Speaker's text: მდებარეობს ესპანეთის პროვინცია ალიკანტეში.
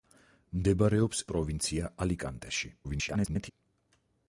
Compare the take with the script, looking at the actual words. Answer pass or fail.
fail